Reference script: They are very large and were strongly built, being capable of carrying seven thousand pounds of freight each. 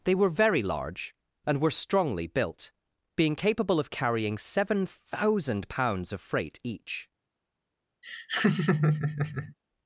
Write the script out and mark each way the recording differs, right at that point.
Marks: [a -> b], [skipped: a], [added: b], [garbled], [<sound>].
They [are -> were] very large and were strongly built, being capable of carrying seven thousand pounds of freight each. [laugh]